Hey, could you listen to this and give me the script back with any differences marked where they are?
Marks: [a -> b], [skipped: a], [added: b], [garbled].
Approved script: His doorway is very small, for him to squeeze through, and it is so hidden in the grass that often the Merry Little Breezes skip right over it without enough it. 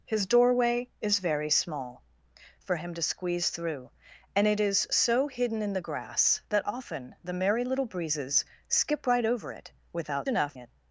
His doorway is very small, for him to squeeze through, and it is so hidden in the grass that often the Merry Little Breezes skip right over it without enough it.